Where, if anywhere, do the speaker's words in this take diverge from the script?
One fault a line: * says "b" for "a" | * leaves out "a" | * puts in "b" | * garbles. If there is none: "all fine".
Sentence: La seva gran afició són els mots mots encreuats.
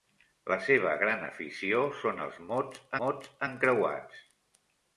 all fine